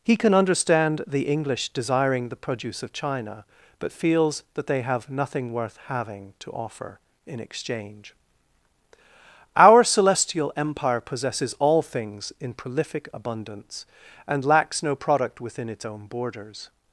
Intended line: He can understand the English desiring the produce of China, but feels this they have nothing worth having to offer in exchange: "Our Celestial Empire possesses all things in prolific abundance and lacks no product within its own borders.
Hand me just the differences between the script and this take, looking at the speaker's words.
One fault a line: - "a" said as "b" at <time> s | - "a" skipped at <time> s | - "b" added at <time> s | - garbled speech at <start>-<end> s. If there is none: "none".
- "this" said as "that" at 4.5 s